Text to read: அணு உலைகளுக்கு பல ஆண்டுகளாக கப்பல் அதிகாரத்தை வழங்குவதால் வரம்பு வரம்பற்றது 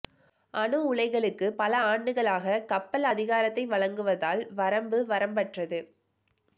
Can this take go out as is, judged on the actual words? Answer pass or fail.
pass